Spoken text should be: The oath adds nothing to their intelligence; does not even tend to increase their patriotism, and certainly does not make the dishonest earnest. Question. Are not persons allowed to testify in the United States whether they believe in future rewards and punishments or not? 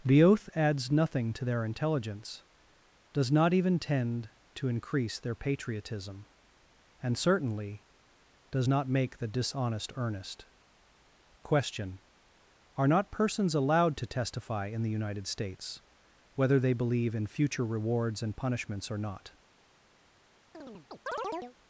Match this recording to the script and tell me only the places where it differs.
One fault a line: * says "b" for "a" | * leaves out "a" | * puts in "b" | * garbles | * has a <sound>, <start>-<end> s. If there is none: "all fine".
* has a chirp, 20.5-21.6 s